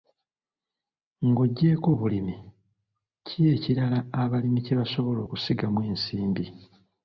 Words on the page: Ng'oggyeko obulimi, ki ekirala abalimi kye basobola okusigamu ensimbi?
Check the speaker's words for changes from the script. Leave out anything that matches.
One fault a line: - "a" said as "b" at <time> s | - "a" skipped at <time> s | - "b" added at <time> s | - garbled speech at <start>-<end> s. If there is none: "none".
none